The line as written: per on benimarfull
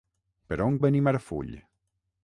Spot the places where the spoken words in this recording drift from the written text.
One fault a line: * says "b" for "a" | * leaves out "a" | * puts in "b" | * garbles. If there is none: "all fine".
all fine